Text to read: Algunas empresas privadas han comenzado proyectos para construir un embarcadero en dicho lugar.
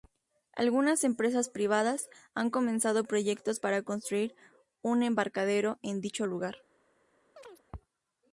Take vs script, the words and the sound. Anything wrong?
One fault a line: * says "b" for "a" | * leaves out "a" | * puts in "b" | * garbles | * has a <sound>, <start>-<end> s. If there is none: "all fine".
* has a chirp, 7.4-7.6 s